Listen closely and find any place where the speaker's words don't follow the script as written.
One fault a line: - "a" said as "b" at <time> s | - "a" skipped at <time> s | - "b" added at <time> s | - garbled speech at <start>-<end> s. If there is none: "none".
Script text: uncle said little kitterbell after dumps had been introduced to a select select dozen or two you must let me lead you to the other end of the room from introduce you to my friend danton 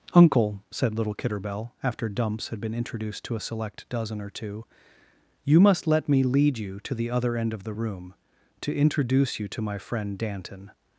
- "select" skipped at 3.9 s
- "from" said as "to" at 8.6 s